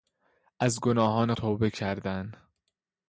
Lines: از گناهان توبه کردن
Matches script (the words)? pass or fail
pass